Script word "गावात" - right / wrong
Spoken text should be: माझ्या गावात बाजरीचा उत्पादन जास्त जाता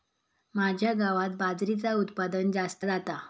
right